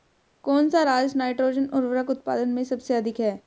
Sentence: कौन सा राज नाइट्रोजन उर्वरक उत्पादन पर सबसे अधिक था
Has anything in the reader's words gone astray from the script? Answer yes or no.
yes